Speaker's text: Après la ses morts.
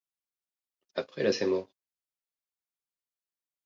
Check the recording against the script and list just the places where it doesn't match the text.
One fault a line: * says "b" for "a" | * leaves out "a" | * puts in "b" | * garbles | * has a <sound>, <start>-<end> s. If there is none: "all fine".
all fine